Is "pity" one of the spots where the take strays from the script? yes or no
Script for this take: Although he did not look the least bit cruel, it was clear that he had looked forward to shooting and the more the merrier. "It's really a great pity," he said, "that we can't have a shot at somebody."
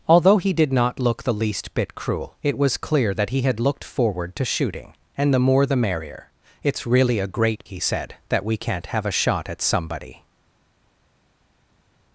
yes